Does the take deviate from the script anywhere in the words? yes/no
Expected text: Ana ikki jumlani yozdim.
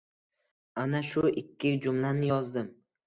yes